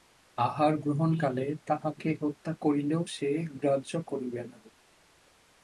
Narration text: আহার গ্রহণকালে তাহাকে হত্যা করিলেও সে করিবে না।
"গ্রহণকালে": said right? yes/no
yes